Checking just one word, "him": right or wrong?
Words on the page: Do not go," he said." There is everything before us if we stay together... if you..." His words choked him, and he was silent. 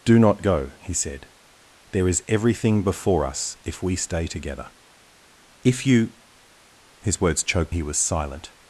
wrong